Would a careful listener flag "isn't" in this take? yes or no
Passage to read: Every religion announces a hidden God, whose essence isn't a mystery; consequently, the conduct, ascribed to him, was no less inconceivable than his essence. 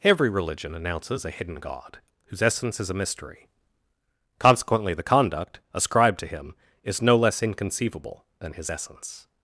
yes